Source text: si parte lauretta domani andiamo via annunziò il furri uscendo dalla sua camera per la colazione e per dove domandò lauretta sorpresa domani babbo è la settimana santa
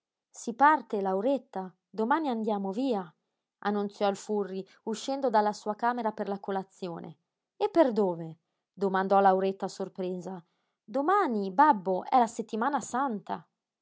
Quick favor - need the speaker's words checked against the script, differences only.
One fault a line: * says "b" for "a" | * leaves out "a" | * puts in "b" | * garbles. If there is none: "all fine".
all fine